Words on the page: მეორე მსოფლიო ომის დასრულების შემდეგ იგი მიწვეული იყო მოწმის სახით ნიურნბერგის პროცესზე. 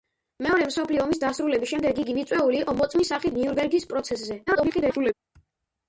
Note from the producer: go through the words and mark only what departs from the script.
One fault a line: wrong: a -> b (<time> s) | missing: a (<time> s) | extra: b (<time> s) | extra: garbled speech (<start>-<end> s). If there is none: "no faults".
extra: garbled speech (4.5-5.1 s)